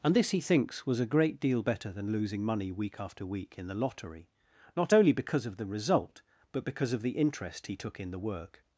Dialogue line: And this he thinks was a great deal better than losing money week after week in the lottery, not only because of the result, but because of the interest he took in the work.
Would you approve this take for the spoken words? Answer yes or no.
yes